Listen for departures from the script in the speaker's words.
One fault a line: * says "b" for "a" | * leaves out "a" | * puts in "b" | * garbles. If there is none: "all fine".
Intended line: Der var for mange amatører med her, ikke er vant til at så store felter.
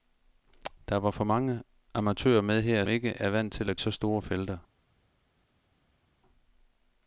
all fine